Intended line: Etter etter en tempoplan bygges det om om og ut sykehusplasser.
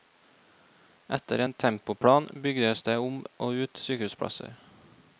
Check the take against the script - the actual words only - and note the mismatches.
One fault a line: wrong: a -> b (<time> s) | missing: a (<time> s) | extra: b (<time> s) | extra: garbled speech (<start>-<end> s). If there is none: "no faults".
missing: etter (1.4 s)
missing: om (3.2 s)